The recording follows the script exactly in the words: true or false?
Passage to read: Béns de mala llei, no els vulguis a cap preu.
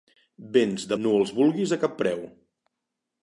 false